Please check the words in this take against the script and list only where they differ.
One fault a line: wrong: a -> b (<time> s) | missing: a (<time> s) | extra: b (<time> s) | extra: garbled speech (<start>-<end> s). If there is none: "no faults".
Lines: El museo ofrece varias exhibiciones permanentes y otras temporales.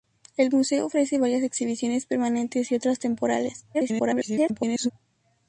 extra: garbled speech (3.7-4.9 s)